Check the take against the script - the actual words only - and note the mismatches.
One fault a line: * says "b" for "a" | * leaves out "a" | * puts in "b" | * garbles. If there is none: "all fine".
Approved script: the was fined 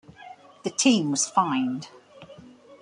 * puts in "team"